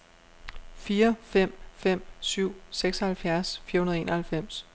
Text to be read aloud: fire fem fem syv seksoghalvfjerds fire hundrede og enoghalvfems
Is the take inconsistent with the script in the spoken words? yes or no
no